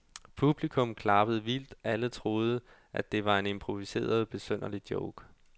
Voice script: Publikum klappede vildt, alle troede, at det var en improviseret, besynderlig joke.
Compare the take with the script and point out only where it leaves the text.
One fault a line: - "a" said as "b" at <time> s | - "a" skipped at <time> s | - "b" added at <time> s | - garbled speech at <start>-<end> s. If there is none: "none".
none